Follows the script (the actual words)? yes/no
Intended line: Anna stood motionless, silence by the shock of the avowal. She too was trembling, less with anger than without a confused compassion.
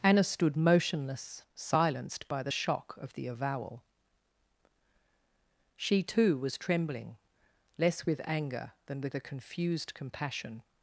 no